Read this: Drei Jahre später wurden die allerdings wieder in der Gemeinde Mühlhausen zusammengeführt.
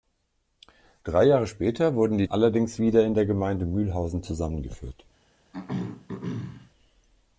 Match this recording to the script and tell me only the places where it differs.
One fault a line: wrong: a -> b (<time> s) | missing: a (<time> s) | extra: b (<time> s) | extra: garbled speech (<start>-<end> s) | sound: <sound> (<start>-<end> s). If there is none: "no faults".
sound: throat clearing (5.5-6.7 s)